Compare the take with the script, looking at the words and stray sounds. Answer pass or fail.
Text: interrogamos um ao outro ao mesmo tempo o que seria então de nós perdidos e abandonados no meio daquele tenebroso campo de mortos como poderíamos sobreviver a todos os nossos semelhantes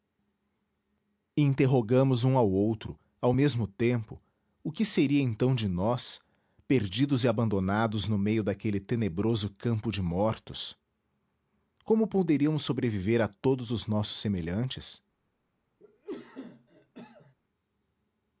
fail